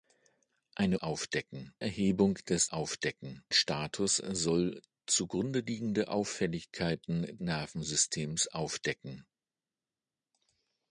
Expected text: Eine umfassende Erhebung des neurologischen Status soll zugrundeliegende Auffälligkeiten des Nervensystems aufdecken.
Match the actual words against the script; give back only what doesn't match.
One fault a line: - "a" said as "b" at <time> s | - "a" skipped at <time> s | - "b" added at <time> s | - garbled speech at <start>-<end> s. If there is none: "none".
- "umfassende" said as "aufdecken" at 1.0 s
- "neurologischen" said as "aufdecken" at 2.7 s
- "des" skipped at 7.4 s